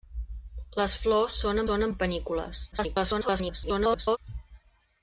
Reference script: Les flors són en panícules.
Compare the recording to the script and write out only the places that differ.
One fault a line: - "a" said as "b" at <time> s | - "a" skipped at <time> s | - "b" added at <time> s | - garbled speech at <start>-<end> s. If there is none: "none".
- "són" added at 1.7 s
- garbled speech at 2.7-4.2 s